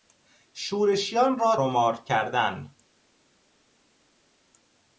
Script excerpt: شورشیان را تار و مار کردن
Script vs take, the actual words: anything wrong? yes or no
yes